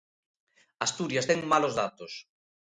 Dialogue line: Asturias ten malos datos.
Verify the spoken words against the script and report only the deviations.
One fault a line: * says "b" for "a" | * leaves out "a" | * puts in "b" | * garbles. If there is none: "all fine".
all fine